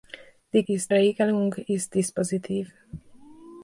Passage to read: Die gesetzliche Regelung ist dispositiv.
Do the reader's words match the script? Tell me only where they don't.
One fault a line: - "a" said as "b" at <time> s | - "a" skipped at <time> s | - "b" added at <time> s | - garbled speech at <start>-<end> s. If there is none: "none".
- "gesetzliche" said as "ist" at 0.7 s